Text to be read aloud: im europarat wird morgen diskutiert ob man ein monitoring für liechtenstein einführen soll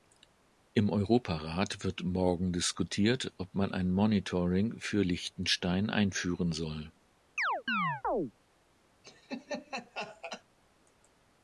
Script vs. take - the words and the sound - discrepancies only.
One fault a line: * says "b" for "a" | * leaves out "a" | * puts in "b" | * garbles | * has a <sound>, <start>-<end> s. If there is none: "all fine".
* has a chirp, 7.4-8.3 s
* has a laugh, 9.0-10.4 s